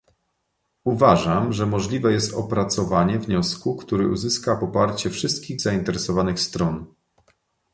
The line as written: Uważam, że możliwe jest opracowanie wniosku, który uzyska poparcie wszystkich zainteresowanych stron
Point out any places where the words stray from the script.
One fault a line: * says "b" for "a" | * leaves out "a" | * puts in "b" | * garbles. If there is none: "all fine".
all fine